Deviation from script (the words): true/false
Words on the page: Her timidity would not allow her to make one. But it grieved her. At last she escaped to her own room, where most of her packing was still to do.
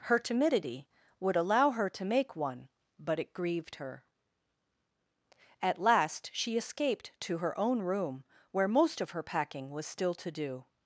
true